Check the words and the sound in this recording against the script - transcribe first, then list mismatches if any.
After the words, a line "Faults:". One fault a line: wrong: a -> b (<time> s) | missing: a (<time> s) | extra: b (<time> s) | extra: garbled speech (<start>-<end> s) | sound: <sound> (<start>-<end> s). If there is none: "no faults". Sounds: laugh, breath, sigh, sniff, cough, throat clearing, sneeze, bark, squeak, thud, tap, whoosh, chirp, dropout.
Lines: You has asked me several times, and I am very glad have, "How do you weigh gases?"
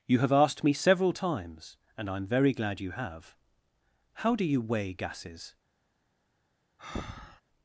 You have asked me several times, and I am very glad you have, "How do you weigh gases?"
Faults:
wrong: has -> have (0.2 s)
extra: you (2.8 s)
sound: breath (6.8-7.4 s)